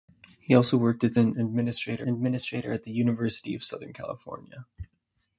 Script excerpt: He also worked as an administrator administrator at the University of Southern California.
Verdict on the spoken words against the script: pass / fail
pass